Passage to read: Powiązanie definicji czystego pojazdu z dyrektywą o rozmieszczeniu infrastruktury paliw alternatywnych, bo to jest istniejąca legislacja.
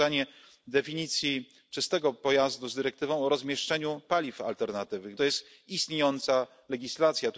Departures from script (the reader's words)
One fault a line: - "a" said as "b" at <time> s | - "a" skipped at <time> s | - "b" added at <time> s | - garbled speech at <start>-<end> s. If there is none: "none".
- "infrastruktury" skipped at 4.0 s
- "bo" skipped at 5.2 s